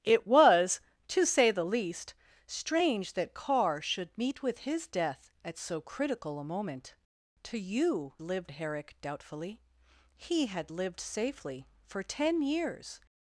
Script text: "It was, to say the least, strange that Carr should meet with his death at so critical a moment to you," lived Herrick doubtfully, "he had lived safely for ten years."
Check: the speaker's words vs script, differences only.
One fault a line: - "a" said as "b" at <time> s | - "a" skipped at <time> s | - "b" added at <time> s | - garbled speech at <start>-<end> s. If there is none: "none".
none